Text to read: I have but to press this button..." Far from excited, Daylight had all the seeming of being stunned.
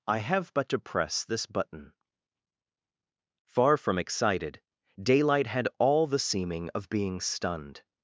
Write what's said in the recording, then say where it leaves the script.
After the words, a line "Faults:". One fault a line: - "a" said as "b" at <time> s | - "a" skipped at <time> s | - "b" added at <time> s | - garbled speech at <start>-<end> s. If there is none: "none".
I have but to press this button..." Far from excited, Daylight had all the seeming of being stunned.
Faults:
none